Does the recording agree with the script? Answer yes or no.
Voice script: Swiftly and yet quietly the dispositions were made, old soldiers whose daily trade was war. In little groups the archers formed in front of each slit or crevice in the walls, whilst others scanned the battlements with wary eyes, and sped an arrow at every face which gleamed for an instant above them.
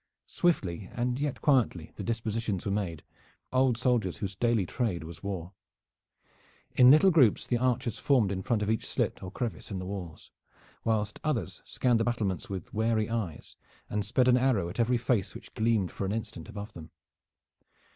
yes